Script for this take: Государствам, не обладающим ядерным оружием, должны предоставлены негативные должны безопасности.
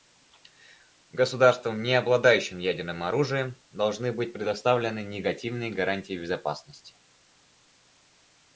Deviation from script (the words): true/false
true